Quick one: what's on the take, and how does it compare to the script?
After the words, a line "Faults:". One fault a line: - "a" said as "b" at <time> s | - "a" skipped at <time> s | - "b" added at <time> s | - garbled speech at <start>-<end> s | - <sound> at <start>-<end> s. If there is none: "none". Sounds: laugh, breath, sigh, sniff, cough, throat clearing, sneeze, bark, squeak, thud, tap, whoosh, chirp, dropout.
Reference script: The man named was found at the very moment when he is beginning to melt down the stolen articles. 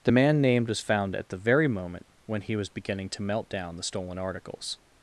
The man named was found at the very moment when he was beginning to melt down the stolen articles.
Faults:
- "is" said as "was" at 2.5 s